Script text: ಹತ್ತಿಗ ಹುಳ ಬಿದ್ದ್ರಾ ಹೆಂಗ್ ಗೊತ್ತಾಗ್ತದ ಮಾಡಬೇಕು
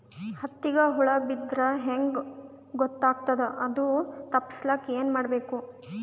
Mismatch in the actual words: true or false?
true